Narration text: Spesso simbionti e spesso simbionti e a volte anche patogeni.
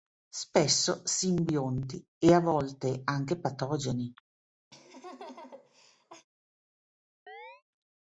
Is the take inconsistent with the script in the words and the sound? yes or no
yes